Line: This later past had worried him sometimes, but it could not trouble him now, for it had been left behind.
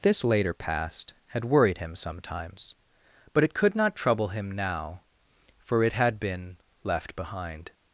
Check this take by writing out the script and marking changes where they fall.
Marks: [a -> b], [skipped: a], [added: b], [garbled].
This later past had worried him sometimes, but it could not trouble him now, for it had been left behind.